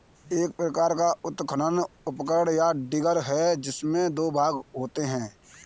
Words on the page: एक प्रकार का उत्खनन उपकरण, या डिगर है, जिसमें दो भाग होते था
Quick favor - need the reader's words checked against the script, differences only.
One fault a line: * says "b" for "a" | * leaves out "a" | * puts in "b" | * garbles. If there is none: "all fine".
* says "है" for "था"